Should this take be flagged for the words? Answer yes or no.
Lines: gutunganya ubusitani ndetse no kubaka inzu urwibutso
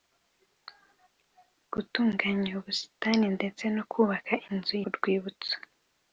no